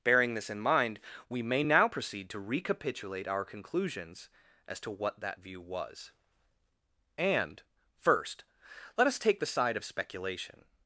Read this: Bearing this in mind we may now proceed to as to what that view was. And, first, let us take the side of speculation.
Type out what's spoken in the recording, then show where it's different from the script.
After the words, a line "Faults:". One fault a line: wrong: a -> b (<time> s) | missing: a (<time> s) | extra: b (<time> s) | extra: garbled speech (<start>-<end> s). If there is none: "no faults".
Bearing this in mind we may now proceed to recapitulate our conclusions as to what that view was. And, first, let us take the side of speculation.
Faults:
extra: recapitulate our conclusions (2.4 s)